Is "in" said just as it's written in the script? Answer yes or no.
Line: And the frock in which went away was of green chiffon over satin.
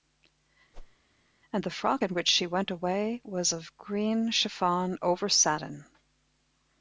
yes